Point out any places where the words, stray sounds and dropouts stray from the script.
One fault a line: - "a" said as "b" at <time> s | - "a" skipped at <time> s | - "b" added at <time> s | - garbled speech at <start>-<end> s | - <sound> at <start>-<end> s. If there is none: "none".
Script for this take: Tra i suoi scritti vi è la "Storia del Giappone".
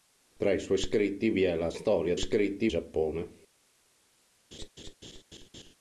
- "del" said as "scritti" at 2.2 s
- laugh at 4.5-5.7 s